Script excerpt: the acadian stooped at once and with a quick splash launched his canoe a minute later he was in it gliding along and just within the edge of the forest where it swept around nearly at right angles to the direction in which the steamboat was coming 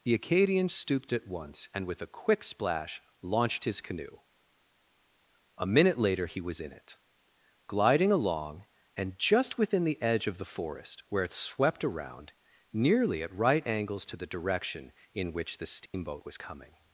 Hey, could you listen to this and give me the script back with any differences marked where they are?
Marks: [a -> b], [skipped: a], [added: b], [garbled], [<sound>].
the acadian stooped at once and with a quick splash launched his canoe a minute later he was in it gliding along and just within the edge of the forest where it swept around nearly at right angles to the direction in which the steamboat [dropout] was coming